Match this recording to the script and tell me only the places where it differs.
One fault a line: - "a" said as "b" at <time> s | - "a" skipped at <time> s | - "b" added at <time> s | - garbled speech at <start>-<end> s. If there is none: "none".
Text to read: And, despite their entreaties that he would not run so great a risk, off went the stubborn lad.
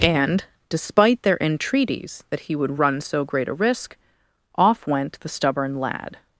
- "not" skipped at 2.8 s